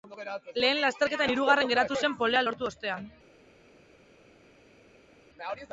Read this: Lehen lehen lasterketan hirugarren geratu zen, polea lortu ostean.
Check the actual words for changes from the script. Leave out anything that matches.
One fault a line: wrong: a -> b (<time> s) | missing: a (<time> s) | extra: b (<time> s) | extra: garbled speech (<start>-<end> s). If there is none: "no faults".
missing: lehen (0.8 s)